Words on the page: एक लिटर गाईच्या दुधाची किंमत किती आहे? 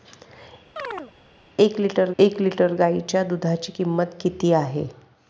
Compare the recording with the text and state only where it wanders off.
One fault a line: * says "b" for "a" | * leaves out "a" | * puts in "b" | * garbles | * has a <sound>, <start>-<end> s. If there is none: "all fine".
* has a chirp, 0.8-1.1 s
* puts in "एक लिटर"